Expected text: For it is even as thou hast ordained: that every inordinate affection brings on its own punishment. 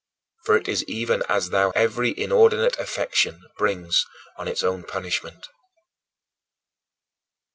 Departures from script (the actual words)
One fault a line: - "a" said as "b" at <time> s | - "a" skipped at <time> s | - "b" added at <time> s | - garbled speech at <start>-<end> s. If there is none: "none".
- "hast ordained that" skipped at 1.7 s